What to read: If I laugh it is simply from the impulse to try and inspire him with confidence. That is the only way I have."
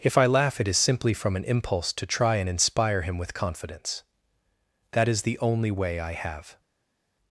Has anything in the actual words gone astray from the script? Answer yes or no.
yes